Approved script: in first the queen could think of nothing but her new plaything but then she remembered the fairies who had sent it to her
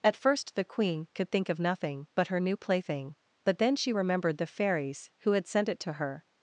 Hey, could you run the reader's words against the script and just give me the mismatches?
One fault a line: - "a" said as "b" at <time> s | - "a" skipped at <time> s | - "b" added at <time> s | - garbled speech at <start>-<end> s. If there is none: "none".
- "in" said as "at" at 0.0 s